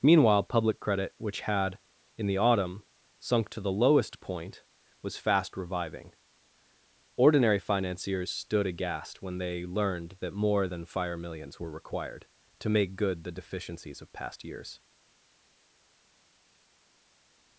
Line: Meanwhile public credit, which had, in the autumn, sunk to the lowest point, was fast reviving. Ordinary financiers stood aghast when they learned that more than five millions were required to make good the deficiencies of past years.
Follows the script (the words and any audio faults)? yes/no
no